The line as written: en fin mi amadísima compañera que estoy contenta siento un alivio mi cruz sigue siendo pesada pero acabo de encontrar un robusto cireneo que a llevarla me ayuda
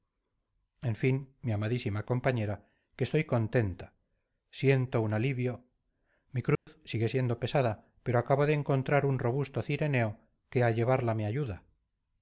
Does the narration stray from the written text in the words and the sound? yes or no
yes